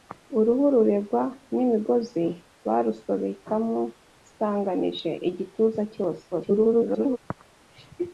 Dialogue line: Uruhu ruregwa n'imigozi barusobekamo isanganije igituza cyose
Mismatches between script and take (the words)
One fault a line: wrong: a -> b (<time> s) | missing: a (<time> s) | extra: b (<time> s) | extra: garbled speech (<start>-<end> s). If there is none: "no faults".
extra: garbled speech (6.3-7.2 s)